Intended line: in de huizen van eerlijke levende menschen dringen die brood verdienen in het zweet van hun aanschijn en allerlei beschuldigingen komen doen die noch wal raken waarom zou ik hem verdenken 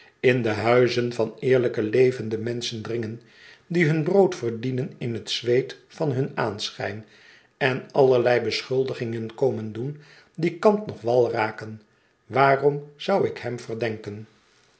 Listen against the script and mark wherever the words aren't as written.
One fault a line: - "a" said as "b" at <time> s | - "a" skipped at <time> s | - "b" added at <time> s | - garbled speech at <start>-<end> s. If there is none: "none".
- "hun" added at 3.9 s
- "kant" added at 10.6 s